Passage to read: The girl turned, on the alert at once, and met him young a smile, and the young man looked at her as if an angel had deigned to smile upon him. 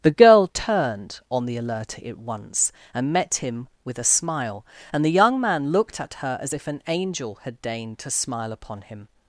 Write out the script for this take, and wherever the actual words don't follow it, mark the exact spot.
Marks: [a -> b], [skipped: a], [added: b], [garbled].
The girl turned, on the alert at once, and met him [young -> with] a smile, and the young man looked at her as if an angel had deigned to smile upon him.